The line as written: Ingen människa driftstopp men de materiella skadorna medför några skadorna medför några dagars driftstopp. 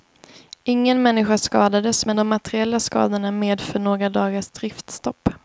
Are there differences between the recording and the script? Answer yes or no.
yes